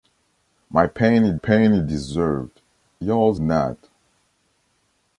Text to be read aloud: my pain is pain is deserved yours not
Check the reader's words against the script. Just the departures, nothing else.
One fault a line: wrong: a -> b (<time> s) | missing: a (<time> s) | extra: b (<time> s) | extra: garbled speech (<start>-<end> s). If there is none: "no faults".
no faults